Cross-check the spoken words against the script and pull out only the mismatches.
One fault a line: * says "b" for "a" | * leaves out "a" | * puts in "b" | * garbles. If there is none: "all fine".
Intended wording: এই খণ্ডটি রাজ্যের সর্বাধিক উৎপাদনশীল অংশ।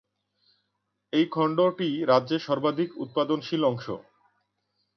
all fine